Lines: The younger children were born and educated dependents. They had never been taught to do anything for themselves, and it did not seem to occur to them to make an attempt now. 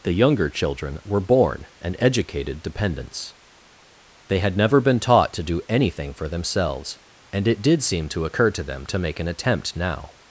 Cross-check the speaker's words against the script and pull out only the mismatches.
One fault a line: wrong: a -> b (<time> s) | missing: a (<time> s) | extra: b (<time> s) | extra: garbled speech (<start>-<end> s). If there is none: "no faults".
missing: not (7.8 s)